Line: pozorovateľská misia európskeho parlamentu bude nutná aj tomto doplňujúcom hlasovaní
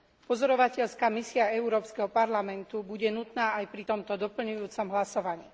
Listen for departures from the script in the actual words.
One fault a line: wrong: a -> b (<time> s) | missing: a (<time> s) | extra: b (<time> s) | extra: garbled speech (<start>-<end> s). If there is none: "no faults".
extra: pri (3.7 s)